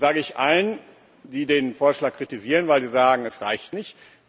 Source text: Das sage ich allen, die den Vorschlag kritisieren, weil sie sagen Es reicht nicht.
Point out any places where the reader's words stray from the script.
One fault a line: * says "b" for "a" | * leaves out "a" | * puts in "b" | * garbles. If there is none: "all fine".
all fine